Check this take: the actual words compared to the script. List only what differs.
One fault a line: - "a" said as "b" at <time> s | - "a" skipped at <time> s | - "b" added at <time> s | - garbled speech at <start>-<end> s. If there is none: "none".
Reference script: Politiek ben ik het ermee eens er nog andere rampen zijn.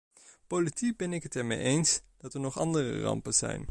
- "dat" added at 2.2 s